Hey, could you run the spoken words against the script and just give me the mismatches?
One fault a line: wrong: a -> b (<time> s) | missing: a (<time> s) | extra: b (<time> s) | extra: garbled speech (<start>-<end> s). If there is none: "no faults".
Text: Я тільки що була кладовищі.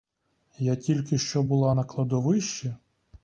extra: на (1.7 s)